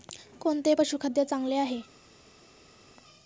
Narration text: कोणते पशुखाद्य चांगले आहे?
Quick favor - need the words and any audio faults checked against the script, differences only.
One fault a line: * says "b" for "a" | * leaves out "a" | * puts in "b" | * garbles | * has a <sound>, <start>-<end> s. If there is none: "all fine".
all fine